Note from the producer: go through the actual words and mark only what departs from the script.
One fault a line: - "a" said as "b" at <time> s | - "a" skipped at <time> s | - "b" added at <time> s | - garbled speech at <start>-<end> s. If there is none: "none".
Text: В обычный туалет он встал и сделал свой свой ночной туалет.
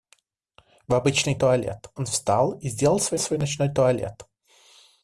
none